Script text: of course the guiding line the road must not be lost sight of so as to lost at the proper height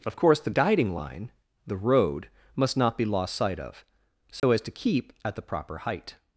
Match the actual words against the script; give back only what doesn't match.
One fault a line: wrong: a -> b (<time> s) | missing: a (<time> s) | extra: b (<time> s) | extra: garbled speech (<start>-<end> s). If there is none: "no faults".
wrong: lost -> keep (4.7 s)